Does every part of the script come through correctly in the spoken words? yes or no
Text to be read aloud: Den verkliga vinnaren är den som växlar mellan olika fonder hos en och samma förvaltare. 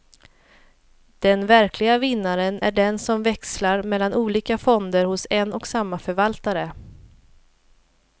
yes